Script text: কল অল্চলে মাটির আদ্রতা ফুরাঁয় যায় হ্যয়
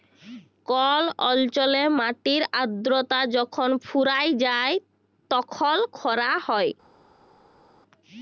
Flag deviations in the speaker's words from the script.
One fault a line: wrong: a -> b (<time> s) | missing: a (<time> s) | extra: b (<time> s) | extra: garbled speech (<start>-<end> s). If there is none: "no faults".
extra: যখল (3.4 s)
extra: তখল খরা (5.3 s)